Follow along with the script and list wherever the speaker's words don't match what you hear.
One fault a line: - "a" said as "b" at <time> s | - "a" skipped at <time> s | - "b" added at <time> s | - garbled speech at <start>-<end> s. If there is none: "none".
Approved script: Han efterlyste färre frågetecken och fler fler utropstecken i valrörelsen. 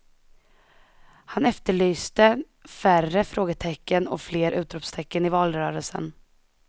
- "fler" skipped at 4.5 s